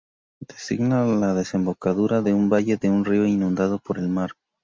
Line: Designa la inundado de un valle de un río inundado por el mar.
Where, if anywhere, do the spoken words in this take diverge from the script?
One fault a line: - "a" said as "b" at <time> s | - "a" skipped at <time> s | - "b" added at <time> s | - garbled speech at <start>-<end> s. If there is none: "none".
- "inundado" said as "desembocadura" at 1.4 s